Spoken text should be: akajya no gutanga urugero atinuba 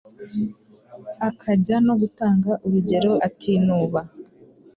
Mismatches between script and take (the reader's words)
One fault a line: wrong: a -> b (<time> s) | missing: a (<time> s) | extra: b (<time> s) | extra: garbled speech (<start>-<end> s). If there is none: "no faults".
no faults